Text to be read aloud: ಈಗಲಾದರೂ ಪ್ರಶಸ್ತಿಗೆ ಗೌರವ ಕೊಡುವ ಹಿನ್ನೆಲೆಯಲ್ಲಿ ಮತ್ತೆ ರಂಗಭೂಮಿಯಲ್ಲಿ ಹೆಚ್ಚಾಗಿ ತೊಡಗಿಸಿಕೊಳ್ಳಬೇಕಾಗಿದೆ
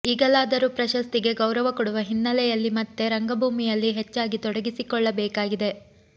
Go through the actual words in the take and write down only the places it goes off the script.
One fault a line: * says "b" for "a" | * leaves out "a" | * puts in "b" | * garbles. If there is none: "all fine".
all fine